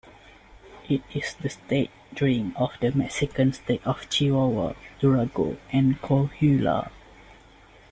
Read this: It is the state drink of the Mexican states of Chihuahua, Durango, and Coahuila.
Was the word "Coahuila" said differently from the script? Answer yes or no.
no